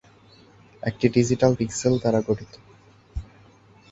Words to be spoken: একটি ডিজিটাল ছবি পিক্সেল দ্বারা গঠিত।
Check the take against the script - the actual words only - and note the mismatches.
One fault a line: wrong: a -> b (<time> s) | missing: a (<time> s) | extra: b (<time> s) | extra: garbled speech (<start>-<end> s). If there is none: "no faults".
missing: ছবি (1.5 s)